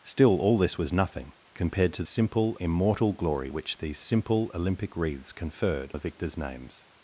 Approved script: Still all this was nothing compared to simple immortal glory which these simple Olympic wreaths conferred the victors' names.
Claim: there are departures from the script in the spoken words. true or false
false